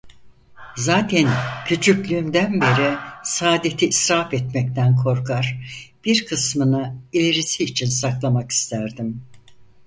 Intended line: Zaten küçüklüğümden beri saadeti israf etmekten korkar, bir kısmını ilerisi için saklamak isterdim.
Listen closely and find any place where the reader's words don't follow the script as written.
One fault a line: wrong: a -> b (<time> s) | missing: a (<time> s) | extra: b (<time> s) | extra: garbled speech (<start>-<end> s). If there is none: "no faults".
no faults